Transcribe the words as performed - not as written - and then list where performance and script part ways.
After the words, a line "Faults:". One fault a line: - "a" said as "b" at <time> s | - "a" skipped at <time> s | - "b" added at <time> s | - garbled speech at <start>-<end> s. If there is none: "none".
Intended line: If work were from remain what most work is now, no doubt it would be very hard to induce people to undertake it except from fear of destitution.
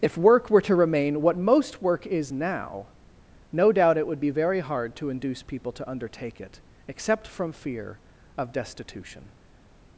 If work were to remain what most work is now, no doubt it would be very hard to induce people to undertake it except from fear of destitution.
Faults:
- "from" said as "to" at 0.6 s